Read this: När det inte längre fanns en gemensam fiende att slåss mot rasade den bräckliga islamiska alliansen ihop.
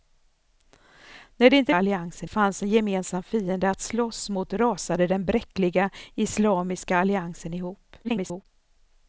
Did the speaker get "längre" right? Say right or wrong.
wrong